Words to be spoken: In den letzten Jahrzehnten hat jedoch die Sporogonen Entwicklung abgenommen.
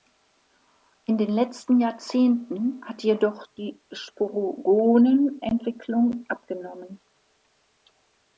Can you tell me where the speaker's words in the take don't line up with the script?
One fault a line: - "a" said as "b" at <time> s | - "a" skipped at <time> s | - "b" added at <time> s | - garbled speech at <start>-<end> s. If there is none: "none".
none